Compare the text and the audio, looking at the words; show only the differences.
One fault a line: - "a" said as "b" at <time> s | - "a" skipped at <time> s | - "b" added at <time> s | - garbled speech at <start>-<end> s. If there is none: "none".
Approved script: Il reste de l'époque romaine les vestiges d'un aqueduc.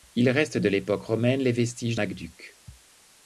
- "d'un" skipped at 1.9 s